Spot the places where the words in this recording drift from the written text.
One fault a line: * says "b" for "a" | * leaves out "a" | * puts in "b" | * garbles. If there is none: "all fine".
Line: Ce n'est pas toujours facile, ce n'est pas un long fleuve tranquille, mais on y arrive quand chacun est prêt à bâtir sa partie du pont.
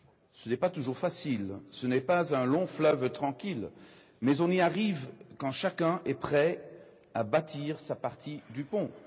all fine